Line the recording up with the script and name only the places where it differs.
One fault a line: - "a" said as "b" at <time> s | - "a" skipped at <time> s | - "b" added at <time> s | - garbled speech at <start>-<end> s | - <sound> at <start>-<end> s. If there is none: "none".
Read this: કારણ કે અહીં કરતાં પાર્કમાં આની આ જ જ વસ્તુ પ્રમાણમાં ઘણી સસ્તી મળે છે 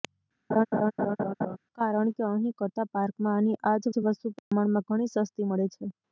- laugh at 0.5-1.6 s
- dropout at 4.4-4.5 s